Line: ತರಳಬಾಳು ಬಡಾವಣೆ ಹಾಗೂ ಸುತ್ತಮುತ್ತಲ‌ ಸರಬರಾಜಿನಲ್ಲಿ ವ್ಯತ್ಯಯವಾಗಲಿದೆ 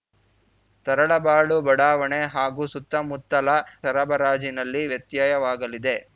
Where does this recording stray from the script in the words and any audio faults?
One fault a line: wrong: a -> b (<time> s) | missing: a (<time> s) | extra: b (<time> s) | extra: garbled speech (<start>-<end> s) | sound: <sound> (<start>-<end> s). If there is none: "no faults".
no faults